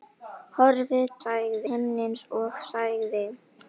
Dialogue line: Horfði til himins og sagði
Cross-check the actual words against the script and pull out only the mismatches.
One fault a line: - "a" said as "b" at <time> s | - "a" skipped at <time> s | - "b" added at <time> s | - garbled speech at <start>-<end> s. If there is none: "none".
- "til" said as "sagði" at 1.2 s